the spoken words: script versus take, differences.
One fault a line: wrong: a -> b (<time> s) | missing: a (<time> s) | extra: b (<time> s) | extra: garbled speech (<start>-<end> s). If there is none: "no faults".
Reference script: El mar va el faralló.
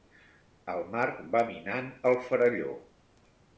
extra: minant (1.5 s)